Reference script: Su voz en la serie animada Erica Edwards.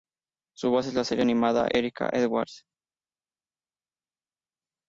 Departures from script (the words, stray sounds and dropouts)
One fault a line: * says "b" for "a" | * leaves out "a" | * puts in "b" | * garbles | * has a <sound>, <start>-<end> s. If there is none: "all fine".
all fine